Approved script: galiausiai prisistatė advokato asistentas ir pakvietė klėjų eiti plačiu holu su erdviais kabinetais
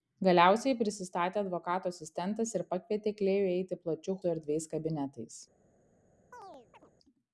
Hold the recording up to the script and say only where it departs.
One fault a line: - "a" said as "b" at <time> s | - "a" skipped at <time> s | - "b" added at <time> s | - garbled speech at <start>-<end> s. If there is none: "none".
- "holu" skipped at 4.2 s